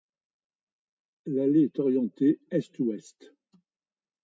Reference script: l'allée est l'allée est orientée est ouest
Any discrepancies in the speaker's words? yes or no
yes